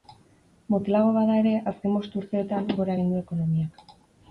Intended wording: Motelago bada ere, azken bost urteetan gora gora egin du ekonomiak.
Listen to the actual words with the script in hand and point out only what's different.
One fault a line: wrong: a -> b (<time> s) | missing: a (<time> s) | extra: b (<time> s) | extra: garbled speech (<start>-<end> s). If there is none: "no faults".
missing: gora (3.0 s)